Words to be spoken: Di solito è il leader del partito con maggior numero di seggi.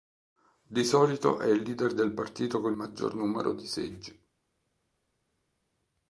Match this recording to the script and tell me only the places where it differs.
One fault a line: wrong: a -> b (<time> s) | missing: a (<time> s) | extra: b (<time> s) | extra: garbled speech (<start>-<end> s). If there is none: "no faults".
no faults